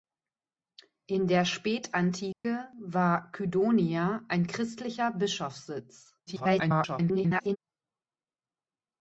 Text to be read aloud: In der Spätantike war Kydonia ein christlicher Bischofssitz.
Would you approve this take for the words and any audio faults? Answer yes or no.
no